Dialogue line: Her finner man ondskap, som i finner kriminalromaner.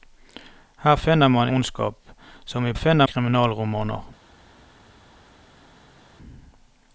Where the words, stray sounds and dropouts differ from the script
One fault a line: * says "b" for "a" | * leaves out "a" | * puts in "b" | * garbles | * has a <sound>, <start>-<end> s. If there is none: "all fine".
all fine